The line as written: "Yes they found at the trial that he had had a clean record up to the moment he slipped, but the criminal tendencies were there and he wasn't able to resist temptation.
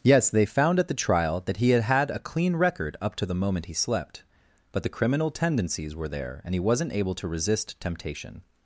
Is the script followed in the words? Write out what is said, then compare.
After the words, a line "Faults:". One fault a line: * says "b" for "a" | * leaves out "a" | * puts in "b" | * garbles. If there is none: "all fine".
"Yes they found at the trial that he had had a clean record up to the moment he slept, but the criminal tendencies were there and he wasn't able to resist temptation.
Faults:
* says "slept" for "slipped"